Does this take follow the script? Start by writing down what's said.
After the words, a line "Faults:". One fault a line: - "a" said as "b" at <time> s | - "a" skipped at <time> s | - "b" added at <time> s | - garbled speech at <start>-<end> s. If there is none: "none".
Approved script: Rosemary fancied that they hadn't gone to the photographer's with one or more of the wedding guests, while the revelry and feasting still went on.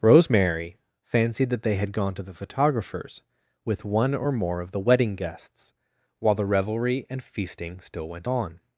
Rosemary fancied that they had gone to the photographer's with one or more of the wedding guests, while the revelry and feasting still went on.
Faults:
- "hadn't" said as "had" at 1.8 s